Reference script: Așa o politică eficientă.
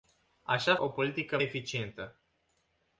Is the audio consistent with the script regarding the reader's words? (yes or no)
yes